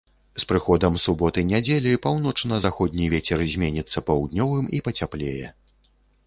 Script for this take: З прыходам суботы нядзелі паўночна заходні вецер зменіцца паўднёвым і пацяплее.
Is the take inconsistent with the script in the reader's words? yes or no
no